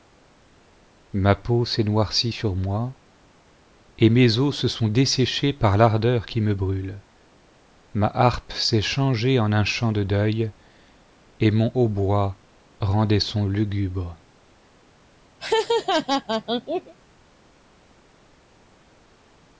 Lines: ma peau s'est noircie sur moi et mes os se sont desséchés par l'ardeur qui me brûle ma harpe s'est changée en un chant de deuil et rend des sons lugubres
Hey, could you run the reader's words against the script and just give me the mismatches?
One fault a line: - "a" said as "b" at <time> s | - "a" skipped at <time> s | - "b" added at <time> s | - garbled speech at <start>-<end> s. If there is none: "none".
- "mon hautbois" added at 11.5 s